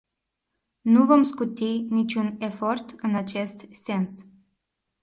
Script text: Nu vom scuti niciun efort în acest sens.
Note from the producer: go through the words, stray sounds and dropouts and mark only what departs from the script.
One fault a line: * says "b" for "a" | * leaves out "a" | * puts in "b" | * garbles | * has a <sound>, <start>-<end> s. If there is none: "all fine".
all fine